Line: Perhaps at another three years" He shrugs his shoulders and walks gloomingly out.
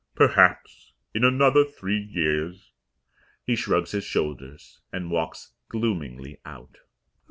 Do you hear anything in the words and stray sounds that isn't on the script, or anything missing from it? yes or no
yes